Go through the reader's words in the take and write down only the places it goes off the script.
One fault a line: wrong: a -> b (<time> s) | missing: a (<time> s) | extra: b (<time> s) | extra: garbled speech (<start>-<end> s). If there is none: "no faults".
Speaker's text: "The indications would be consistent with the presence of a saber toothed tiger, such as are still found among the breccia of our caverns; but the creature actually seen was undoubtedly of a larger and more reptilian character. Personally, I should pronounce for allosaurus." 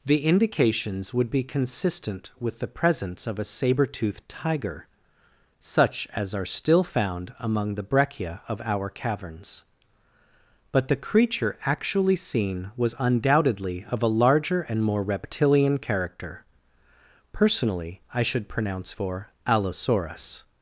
no faults